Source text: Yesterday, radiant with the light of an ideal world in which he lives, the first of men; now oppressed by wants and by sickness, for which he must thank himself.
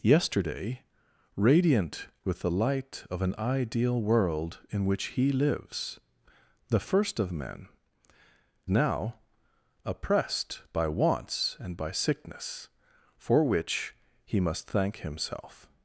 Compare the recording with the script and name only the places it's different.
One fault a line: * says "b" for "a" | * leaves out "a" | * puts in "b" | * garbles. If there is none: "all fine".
all fine